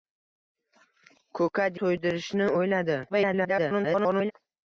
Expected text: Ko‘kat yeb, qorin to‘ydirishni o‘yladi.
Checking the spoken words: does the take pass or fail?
fail